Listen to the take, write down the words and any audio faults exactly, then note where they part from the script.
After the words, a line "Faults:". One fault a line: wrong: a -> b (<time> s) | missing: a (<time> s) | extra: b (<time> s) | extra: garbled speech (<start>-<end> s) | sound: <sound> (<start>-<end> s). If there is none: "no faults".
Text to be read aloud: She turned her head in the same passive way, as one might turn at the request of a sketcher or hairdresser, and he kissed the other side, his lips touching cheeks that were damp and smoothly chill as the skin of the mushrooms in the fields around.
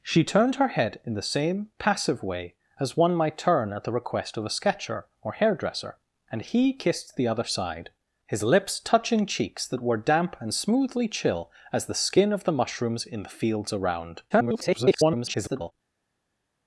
She turned her head in the same passive way, as one might turn at the request of a sketcher or hairdresser, and he kissed the other side, his lips touching cheeks that were damp and smoothly chill as the skin of the mushrooms in the fields around. [garbled]
Faults:
extra: garbled speech (14.3-15.7 s)